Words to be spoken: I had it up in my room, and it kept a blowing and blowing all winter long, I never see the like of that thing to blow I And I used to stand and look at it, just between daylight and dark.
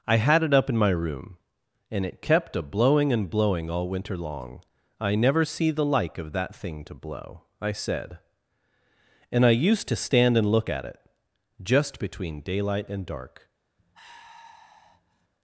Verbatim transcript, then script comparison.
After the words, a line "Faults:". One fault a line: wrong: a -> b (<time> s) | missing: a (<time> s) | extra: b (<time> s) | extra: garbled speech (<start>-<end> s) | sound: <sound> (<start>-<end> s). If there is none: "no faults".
I had it up in my room, and it kept a blowing and blowing all winter long, I never see the like of that thing to blow I said And I used to stand and look at it, just between daylight and dark.
Faults:
extra: said (7.7 s)
sound: sigh (13.8-15.3 s)